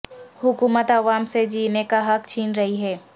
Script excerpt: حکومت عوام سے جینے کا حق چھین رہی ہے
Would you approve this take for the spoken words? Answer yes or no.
yes